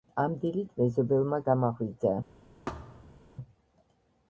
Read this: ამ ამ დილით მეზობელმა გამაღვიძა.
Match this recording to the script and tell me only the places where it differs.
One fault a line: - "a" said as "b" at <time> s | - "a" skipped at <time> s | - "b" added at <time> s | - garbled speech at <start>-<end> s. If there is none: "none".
- "ამ" skipped at 0.3 s